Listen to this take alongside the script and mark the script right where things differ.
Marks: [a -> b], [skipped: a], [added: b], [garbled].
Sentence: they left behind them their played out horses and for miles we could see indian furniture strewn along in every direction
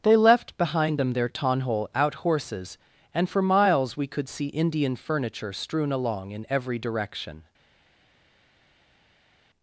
they left behind them their [played -> tonhole] out horses and for miles we could see indian furniture strewn along in every direction